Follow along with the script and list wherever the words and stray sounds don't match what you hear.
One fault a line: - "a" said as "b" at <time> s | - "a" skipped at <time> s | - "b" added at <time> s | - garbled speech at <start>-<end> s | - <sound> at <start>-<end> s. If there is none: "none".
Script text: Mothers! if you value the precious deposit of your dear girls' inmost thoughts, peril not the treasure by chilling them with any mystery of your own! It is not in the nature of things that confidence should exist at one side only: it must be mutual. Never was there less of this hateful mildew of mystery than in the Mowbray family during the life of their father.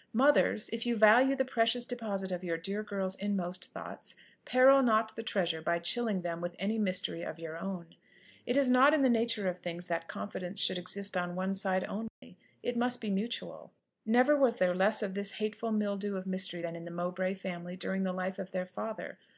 - "at" said as "on" at 11.2 s
- dropout at 12.1-12.2 s